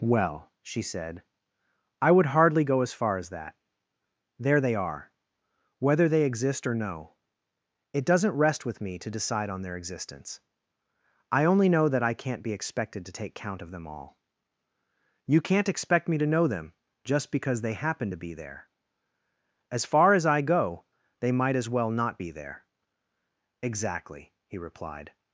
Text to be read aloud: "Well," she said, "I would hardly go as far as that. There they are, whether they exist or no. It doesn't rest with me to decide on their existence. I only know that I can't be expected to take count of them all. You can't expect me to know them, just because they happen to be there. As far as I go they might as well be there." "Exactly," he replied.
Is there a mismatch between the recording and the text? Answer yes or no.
yes